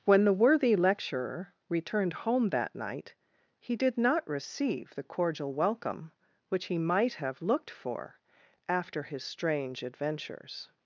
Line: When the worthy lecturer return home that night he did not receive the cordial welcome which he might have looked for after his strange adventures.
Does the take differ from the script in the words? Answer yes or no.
yes